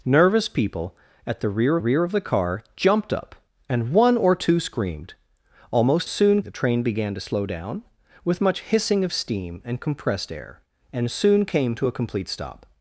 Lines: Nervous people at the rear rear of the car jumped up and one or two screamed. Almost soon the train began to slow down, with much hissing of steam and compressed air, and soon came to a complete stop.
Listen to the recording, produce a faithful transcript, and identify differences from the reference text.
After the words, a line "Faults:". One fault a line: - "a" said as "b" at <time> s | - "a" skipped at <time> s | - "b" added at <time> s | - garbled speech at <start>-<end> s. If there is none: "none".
Nervous people at the rear rear of the car jumped up and one or two screamed. Almost soon the train began to slow down, with much hissing of steam and compressed air, and soon came to a complete stop.
Faults:
none